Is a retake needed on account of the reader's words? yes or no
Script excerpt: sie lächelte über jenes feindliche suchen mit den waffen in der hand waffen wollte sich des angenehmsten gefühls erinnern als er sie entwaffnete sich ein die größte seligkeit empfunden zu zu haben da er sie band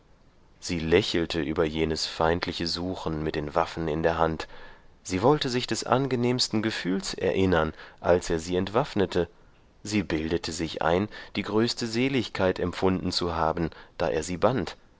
yes